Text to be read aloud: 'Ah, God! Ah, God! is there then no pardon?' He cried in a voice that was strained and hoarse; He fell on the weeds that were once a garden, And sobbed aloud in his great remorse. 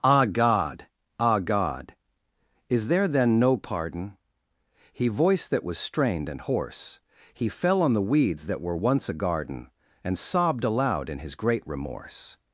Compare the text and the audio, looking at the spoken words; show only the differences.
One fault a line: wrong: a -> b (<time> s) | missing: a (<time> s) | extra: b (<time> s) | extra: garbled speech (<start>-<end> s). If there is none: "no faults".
missing: cried in a (5.1 s)